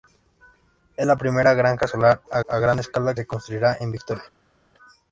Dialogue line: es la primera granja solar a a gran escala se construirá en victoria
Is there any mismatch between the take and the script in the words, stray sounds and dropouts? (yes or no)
no